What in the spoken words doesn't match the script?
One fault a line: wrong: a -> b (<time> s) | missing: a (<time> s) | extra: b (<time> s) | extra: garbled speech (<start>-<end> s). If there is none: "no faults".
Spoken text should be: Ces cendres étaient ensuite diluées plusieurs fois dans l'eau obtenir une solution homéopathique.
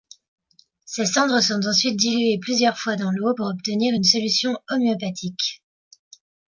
wrong: étaient -> sont (1.4 s)
extra: pour (3.3 s)